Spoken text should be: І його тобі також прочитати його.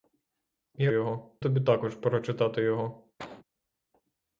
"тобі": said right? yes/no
yes